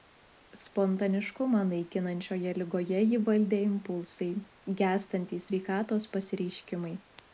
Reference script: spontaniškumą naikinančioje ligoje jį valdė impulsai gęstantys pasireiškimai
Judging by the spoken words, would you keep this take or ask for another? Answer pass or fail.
fail